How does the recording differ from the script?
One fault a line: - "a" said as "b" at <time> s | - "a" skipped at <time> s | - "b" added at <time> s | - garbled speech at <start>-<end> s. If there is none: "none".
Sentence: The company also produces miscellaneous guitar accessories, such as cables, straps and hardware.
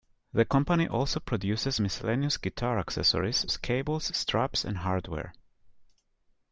- "such" skipped at 3.5 s